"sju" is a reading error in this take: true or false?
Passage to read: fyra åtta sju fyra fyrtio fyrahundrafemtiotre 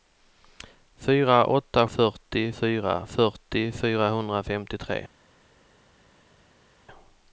true